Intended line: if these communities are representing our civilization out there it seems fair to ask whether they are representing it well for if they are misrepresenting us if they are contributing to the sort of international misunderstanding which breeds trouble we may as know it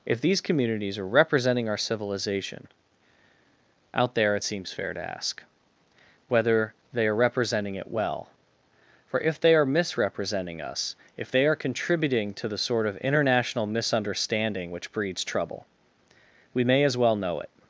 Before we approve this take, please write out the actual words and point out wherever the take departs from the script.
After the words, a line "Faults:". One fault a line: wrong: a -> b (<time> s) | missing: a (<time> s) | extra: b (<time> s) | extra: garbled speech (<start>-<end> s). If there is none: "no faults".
if these communities are representing our civilization out there it seems fair to ask whether they are representing it well for if they are misrepresenting us if they are contributing to the sort of international misunderstanding which breeds trouble we may as well know it
Faults:
extra: well (17.0 s)